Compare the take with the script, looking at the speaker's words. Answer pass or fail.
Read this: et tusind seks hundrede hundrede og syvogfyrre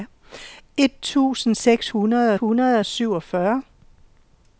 pass